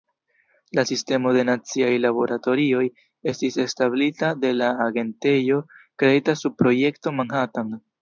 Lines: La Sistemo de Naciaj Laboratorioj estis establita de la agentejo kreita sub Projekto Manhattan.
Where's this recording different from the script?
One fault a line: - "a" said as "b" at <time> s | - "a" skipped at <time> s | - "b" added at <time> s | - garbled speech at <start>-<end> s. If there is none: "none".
none